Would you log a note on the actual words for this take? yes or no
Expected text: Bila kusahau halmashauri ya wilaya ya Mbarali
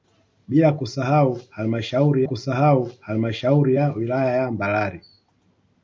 yes